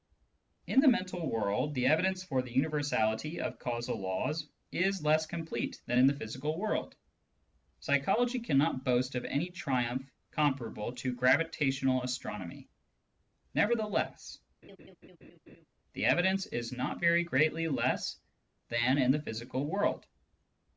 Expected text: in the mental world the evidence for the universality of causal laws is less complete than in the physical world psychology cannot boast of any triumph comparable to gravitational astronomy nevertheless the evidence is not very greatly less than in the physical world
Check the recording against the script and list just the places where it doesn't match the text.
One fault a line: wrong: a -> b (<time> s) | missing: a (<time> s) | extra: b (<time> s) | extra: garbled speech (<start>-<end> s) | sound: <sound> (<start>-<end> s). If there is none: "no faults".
sound: laugh (14.6-15.7 s)